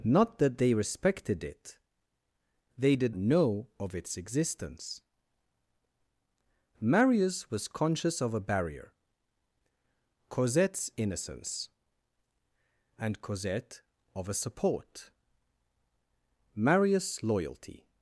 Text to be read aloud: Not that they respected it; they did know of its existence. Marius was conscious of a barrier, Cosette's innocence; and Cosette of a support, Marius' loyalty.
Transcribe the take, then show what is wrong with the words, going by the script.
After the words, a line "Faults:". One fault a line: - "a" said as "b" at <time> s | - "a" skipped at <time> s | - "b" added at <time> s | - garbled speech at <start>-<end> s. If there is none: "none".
Not that they respected it; they did know of its existence. Marius was conscious of a barrier, Cosette's innocence; and Cosette of a support, Marius' loyalty.
Faults:
none